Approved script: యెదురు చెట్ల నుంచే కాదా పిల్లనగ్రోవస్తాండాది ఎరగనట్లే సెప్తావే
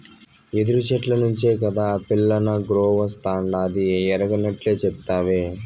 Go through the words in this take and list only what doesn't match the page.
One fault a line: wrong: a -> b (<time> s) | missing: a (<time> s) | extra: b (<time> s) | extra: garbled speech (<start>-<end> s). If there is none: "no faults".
no faults